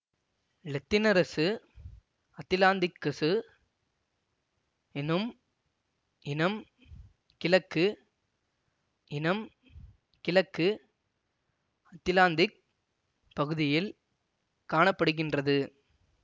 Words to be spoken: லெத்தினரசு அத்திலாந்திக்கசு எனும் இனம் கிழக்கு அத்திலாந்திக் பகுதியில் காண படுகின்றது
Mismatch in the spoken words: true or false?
true